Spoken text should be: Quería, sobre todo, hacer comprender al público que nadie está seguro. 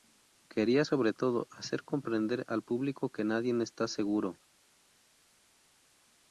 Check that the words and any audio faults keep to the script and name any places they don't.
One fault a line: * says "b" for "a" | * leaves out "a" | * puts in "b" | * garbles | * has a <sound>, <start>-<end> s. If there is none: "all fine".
all fine